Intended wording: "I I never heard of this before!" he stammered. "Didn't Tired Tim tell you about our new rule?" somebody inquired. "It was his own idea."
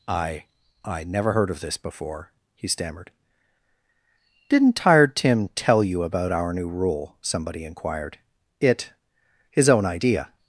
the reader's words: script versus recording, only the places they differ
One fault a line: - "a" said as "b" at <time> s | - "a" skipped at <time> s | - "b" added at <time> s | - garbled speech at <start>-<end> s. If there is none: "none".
- "was" skipped at 8.9 s